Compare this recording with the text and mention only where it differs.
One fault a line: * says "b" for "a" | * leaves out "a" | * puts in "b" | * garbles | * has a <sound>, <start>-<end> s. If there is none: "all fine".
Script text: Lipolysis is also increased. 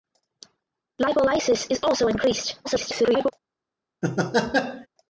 * garbles
* has a laugh, 4.0-4.9 s